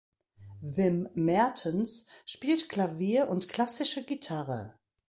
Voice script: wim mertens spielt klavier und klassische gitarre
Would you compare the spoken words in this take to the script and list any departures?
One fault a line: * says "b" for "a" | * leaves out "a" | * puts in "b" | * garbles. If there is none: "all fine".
all fine